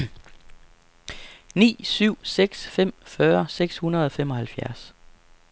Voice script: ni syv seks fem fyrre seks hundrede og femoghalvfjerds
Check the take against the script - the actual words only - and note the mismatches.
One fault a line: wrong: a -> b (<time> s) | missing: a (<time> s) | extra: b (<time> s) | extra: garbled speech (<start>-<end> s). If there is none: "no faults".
no faults